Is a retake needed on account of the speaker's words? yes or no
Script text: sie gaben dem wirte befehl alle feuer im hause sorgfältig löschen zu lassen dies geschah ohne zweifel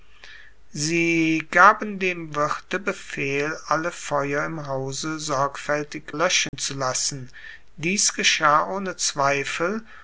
no